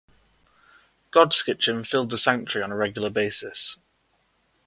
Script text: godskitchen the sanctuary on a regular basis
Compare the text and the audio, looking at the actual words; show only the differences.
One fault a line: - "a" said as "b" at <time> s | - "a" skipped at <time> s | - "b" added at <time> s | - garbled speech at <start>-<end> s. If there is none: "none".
- "filled" added at 1.9 s